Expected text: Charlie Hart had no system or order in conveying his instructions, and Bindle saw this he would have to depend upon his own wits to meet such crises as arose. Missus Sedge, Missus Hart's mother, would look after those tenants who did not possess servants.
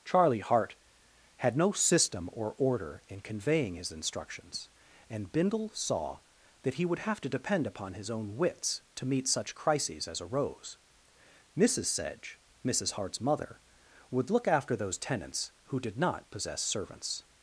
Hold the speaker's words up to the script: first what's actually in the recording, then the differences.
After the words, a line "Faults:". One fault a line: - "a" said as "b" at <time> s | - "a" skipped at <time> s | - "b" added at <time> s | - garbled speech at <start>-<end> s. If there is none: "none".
Charlie Hart had no system or order in conveying his instructions, and Bindle saw that he would have to depend upon his own wits to meet such crises as arose. Missus Sedge, Missus Hart's mother, would look after those tenants who did not possess servants.
Faults:
- "this" said as "that" at 6.6 s